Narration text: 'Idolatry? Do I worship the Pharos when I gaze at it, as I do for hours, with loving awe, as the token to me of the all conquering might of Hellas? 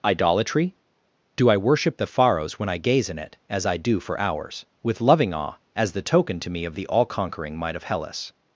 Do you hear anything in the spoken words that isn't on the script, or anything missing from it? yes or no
yes